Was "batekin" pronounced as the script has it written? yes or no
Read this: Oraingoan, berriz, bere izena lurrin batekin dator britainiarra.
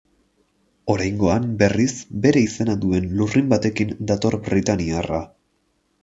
yes